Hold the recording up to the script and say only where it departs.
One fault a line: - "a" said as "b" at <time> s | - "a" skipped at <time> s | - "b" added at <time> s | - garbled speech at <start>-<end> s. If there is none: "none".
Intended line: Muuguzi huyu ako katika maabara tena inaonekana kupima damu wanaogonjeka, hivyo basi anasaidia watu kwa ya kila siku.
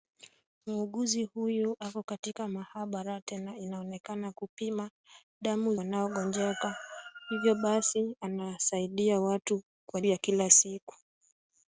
none